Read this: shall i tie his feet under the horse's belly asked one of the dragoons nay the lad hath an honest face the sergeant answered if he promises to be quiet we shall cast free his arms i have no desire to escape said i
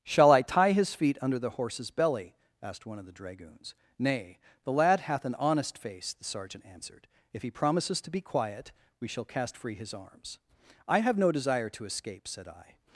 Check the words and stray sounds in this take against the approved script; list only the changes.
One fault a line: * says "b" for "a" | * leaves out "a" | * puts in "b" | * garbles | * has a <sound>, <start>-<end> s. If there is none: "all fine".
all fine